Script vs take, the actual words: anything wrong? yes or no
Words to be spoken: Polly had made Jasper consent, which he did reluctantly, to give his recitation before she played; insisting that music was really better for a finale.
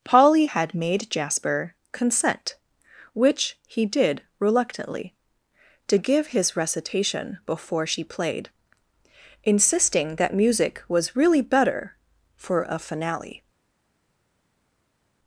no